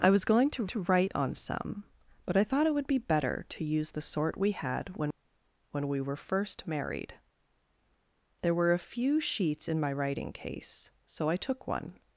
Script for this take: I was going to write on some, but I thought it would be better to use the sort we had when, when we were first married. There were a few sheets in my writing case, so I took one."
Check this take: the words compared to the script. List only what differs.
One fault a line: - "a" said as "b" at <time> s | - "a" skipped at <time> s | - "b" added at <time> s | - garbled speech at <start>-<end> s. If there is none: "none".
- "to" added at 0.7 s